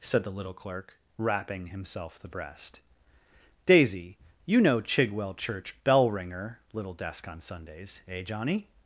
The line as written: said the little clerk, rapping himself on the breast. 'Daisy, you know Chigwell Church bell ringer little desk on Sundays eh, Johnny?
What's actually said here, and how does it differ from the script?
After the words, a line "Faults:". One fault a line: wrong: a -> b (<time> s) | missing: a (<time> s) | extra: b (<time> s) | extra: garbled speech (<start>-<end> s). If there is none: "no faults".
said the little clerk, rapping himself the breast. 'Daisy, you know Chigwell Church bell ringer little desk on Sundays eh, Johnny?
Faults:
missing: on (2.2 s)